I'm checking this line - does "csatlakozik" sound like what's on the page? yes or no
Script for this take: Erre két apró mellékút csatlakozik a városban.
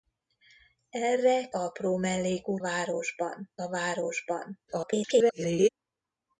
no